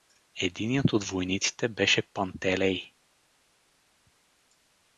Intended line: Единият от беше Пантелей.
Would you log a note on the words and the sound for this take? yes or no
yes